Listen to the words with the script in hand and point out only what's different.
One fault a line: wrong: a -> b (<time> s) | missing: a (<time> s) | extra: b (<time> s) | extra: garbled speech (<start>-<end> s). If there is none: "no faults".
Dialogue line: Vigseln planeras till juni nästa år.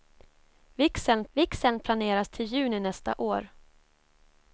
extra: vigseln (1.3 s)